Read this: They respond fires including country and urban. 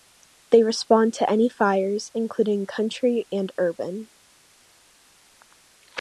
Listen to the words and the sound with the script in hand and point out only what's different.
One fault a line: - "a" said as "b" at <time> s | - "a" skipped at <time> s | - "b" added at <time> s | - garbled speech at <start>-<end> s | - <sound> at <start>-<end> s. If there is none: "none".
- "to any" added at 1.1 s